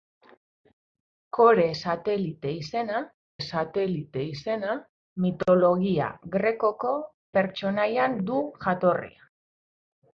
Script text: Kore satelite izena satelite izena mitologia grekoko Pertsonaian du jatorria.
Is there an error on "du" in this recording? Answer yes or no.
no